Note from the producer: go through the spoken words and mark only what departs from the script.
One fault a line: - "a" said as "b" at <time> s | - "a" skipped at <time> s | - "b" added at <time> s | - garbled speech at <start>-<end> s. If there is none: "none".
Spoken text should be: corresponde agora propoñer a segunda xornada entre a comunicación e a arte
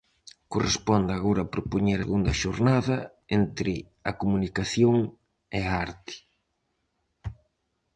- "a" skipped at 2.0 s